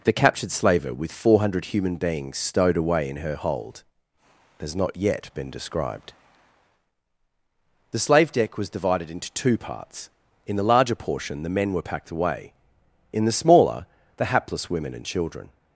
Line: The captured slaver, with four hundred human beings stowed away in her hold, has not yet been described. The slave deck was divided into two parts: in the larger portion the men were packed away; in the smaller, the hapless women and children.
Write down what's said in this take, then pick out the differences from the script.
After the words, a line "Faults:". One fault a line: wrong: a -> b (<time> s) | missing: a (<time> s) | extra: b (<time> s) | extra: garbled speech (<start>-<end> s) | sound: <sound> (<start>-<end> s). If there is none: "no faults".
The captured slaver, with four hundred human beings stowed away in her hold, has not yet been described. The slave deck was divided into two parts: in the larger portion the men were packed away; in the smaller, the hapless women and children.
Faults:
no faults